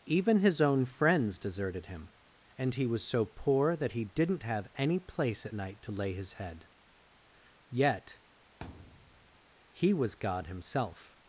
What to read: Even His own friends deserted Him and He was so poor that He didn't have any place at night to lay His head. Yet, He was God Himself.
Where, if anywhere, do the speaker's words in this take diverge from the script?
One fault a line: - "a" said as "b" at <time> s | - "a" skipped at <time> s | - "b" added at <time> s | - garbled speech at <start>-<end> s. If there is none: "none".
none